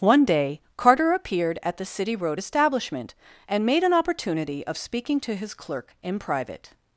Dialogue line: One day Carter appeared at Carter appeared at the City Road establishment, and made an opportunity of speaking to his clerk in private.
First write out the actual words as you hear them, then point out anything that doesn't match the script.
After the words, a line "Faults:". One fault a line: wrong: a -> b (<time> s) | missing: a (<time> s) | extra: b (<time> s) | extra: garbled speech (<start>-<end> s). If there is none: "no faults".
One day Carter appeared at the City Road establishment, and made an opportunity of speaking to his clerk in private.
Faults:
missing: Carter appeared at (1.8 s)